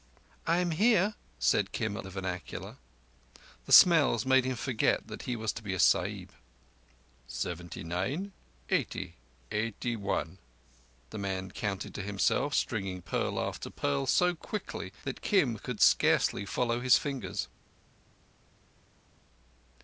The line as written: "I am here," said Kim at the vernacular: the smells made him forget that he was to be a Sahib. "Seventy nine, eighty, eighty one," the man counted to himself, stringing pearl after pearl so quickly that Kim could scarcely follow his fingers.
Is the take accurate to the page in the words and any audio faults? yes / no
yes